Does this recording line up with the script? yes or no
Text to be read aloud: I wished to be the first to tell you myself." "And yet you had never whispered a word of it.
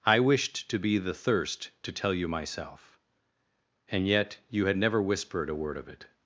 no